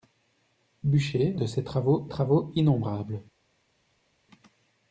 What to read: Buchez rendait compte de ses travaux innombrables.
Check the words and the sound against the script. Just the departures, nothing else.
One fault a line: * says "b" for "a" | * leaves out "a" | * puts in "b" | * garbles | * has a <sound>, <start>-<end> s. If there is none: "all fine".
* leaves out "rendait compte"
* puts in "travaux"